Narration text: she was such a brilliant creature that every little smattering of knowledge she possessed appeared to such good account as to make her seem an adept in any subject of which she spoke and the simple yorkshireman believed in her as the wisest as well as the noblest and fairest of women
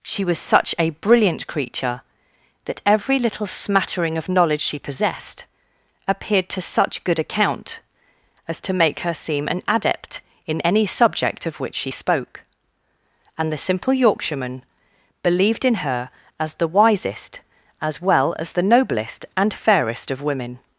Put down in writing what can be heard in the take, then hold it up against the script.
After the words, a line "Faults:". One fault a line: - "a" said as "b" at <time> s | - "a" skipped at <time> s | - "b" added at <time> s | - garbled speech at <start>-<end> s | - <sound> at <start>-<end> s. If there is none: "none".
she was such a brilliant creature that every little smattering of knowledge she possessed appeared to such good account as to make her seem an adept in any subject of which she spoke and the simple yorkshireman believed in her as the wisest as well as the noblest and fairest of women
Faults:
none